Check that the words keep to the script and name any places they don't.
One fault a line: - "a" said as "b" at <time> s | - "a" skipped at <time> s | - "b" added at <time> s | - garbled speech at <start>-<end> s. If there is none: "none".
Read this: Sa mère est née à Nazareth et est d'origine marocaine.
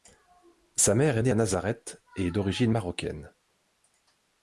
none